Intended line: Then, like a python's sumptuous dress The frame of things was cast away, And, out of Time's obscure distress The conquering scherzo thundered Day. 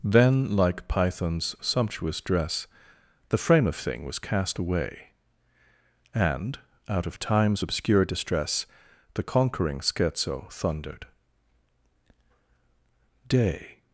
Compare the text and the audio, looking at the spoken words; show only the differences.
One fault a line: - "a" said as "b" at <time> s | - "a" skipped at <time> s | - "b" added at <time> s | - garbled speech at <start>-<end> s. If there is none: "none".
- "a" skipped at 0.9 s
- "things" said as "thing" at 3.8 s